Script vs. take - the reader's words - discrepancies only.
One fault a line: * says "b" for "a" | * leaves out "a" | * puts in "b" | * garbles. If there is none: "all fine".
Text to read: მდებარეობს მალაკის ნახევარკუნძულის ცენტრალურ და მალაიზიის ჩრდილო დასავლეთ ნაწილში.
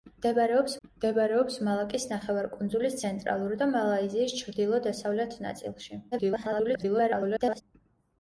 * puts in "მდებარეობს"
* garbles